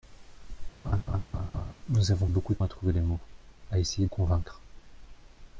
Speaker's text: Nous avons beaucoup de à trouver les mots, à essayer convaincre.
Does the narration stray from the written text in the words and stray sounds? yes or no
yes